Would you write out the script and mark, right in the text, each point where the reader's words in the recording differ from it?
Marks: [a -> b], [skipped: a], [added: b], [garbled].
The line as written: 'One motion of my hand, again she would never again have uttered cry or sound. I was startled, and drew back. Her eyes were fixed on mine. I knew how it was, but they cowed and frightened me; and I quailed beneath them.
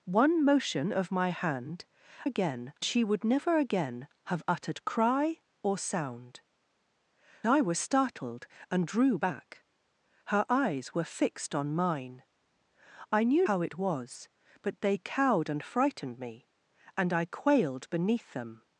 'One motion of my hand, again she would never again have uttered cry or sound. I was startled, and drew back. Her eyes were fixed on mine. I knew how it was, but they cowed and frightened me; and I quailed beneath them.